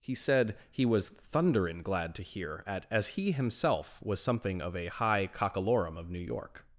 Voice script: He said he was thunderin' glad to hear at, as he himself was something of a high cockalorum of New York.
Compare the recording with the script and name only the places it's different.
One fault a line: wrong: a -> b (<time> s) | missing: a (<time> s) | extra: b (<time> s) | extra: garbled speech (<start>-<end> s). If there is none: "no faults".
no faults